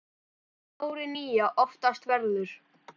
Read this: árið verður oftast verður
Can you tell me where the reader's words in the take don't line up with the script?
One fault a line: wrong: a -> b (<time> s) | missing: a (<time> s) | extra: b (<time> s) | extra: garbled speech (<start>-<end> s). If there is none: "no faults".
wrong: verður -> nýja (1.2 s)